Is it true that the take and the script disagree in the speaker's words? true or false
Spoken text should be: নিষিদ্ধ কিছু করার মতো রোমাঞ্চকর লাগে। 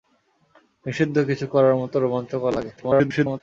true